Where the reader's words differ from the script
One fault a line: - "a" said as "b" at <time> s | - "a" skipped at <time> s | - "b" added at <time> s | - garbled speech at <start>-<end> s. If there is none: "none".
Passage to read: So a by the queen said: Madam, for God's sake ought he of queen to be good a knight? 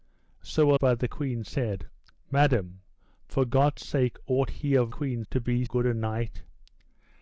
none